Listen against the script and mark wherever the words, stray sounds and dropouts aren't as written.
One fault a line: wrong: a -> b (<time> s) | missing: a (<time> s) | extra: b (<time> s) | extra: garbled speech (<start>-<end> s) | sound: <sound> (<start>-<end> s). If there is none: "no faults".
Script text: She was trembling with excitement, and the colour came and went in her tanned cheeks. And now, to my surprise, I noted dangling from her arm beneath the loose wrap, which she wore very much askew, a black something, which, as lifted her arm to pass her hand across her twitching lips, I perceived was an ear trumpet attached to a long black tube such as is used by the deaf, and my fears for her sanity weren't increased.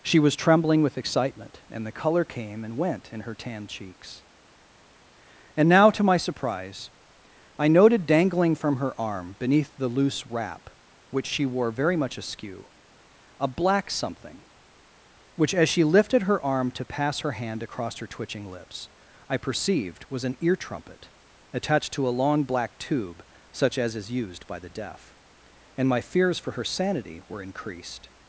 extra: she (15.7 s)
wrong: weren't -> were (27.3 s)